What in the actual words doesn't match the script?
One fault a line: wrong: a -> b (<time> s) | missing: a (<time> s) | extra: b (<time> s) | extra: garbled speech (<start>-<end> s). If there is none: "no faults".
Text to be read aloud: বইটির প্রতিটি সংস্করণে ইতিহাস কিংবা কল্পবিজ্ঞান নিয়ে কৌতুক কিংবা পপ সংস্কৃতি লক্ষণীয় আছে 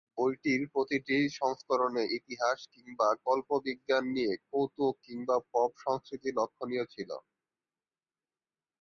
wrong: আছে -> ছিল (6.9 s)